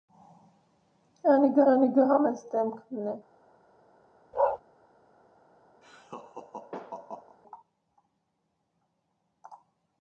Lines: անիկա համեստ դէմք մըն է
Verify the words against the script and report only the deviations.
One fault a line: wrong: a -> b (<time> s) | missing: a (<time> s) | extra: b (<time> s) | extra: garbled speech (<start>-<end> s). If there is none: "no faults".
extra: անիկա (1.7 s)